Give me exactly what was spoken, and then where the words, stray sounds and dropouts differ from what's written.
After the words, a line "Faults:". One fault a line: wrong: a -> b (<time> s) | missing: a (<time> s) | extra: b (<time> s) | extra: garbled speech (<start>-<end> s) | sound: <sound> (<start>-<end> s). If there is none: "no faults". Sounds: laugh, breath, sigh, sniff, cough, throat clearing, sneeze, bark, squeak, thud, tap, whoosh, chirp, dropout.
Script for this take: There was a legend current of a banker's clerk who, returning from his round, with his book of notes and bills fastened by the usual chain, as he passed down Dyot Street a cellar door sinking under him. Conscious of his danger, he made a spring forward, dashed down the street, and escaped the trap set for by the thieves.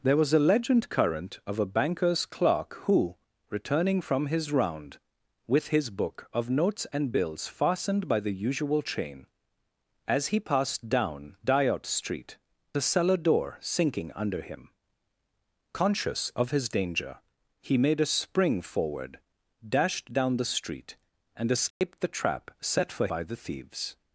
There was a legend current of a banker's clerk who, returning from his round, with his book of notes and bills fastened by the usual chain, as he passed down Dyot Street a cellar door sinking under him. Conscious of his danger, he made a spring forward, dashed down the street, and escaped the trap set for by the thieves.
Faults:
sound: dropout (21.7-21.8 s)